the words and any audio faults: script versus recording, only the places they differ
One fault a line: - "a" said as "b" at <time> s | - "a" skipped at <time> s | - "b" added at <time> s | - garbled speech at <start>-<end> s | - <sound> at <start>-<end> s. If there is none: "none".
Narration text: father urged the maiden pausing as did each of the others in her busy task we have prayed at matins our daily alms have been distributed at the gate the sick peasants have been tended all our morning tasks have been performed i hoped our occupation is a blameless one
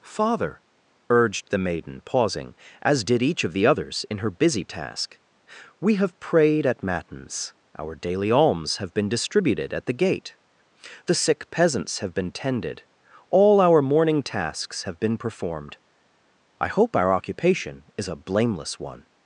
- "hoped" said as "hope" at 16.7 s